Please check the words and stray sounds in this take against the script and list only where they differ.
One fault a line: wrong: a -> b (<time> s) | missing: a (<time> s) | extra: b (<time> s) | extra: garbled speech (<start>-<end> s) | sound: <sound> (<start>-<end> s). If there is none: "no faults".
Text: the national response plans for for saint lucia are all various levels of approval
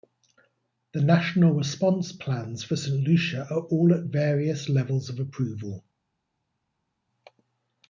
missing: for (2.8 s)
extra: at (3.9 s)